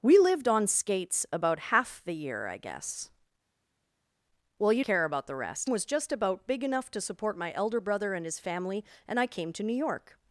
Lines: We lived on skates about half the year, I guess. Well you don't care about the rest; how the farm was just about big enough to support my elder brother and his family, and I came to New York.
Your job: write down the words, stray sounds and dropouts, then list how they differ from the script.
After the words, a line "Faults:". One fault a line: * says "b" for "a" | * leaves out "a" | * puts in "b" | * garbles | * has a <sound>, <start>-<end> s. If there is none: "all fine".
We lived on skates about half the year, I guess. Well you care about the rest; was just about big enough to support my elder brother and his family, and I came to New York.
Faults:
* leaves out "don't"
* leaves out "how the farm"